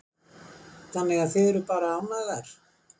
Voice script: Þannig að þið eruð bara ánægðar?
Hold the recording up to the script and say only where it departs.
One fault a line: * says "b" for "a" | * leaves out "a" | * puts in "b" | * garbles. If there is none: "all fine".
all fine